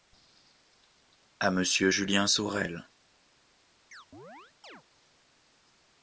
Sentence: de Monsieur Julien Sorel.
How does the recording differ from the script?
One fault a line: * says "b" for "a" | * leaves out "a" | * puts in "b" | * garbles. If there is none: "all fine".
* says "à" for "de"